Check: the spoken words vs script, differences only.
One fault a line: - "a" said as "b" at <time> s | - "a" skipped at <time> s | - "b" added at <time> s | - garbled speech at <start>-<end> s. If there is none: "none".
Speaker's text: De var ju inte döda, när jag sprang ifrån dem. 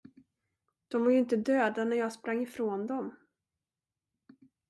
none